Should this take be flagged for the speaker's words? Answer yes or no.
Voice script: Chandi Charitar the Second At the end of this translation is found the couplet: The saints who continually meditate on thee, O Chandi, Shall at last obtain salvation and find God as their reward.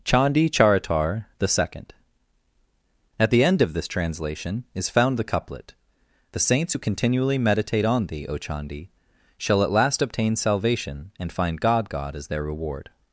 yes